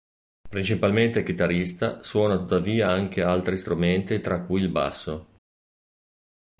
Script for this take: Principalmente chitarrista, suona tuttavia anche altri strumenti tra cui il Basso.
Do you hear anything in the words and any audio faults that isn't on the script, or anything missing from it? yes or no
no